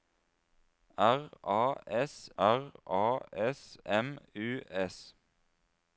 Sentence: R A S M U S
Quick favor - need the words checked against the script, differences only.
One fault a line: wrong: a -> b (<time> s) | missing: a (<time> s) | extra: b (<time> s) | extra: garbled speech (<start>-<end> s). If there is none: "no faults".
extra: r A S (2.4 s)